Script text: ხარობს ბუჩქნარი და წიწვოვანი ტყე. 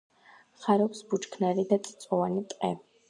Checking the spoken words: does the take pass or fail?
pass